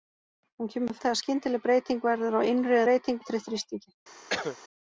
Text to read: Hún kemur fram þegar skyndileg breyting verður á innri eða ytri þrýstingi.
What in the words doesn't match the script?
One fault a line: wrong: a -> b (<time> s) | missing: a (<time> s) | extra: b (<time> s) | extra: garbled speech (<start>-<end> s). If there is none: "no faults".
missing: fram (0.9 s)
wrong: eða -> breyting (2.9 s)